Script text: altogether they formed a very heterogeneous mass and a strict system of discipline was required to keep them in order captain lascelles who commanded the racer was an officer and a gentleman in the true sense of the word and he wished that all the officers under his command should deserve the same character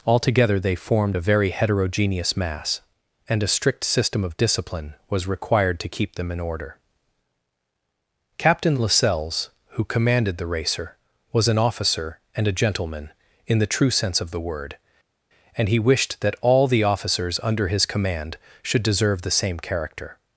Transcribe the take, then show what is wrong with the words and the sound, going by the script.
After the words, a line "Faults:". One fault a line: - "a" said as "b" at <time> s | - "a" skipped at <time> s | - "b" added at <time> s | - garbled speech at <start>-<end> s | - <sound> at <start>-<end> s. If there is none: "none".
altogether they formed a very heterogeneous mass and a strict system of discipline was required to keep them in order captain lascelles who commanded the racer was an officer and a gentleman in the true sense of the word and he wished that all the officers under his command should deserve the same character
Faults:
none